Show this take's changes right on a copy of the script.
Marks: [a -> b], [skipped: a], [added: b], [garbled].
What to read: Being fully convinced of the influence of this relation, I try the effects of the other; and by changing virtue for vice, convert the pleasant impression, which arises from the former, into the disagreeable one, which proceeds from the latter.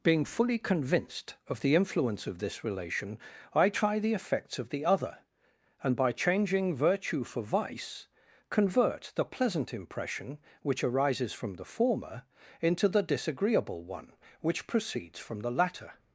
Being fully convinced of the influence of this relation, I try the effects of the other; and by changing virtue for vice, convert the pleasant impression, which arises from the former, into the disagreeable one, which proceeds from the latter.